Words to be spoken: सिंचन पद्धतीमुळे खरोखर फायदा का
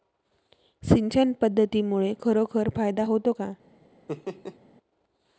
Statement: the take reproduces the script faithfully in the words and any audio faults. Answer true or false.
false